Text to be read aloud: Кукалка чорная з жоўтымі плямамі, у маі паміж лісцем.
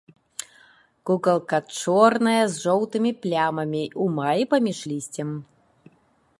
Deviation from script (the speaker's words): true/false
false